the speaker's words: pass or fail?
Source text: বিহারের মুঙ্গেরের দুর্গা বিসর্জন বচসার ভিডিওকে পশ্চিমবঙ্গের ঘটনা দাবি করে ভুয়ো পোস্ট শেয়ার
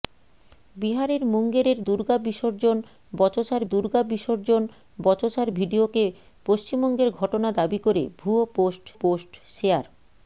fail